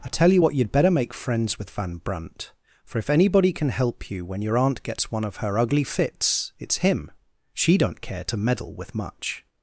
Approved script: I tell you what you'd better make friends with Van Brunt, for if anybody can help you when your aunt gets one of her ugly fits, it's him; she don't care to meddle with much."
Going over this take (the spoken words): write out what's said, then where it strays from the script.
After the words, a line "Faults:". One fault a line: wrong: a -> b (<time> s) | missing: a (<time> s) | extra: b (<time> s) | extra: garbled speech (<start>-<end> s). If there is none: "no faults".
I tell you what you'd better make friends with Van Brunt, for if anybody can help you when your aunt gets one of her ugly fits, it's him; she don't care to meddle with much."
Faults:
no faults